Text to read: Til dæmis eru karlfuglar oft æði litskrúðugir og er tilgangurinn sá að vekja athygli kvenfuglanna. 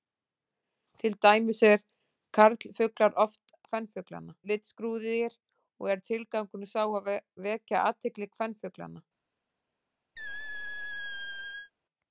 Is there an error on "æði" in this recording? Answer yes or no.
yes